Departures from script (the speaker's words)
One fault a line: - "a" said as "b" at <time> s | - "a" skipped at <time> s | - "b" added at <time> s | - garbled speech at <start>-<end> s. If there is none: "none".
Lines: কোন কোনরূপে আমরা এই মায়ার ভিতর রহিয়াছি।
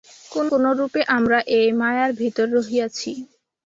none